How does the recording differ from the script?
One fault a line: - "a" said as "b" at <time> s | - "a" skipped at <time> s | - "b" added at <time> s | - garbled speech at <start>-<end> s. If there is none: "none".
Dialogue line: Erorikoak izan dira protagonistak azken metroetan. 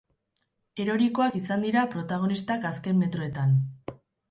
none